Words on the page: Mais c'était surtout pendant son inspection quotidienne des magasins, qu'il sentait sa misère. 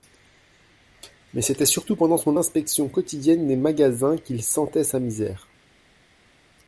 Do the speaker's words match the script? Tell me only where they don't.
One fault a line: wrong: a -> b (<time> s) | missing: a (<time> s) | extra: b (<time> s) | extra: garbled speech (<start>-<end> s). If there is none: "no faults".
no faults